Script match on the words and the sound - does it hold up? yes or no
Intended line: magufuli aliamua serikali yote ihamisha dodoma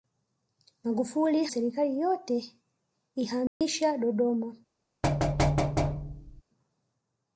no